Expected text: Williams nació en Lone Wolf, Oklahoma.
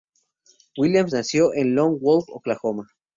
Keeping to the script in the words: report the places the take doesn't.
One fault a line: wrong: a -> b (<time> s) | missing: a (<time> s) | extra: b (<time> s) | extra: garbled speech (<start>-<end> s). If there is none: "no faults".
no faults